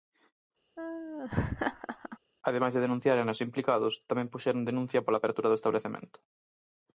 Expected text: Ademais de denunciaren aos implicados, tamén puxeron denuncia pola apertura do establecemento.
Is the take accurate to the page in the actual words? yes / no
yes